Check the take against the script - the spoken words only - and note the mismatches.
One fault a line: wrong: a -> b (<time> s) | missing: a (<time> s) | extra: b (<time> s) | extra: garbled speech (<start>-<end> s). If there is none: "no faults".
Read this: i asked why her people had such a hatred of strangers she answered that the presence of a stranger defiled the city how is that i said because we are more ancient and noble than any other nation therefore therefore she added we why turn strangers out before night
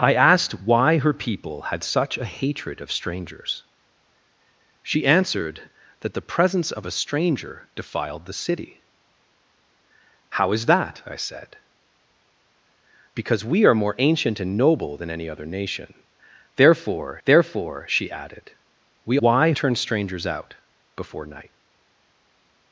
no faults